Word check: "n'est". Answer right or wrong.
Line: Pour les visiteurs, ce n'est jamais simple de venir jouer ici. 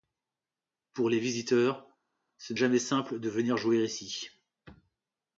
wrong